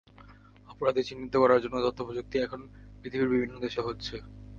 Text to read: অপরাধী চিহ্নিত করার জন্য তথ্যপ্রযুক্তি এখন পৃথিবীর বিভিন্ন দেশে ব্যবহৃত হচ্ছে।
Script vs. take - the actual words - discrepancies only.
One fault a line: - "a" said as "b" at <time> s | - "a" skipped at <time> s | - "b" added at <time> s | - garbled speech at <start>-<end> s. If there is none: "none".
- "ব্যবহৃত" skipped at 3.8 s